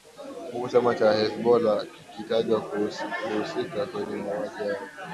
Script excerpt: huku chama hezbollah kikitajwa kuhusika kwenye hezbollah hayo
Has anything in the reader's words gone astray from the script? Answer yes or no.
yes